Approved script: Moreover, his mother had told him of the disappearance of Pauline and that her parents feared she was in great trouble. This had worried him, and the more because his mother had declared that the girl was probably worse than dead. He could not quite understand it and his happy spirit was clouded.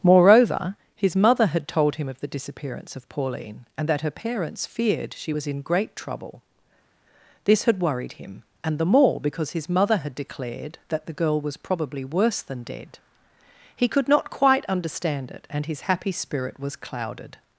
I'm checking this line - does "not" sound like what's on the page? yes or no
yes